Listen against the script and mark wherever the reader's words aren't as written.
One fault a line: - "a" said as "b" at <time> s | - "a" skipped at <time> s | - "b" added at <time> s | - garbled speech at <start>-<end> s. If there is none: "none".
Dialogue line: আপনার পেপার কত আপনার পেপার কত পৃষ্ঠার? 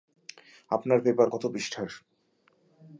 - "আপনার পেপার কত" skipped at 1.4 s